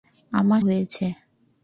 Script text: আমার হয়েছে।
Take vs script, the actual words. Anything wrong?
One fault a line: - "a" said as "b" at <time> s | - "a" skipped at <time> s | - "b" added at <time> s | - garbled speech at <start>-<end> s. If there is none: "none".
none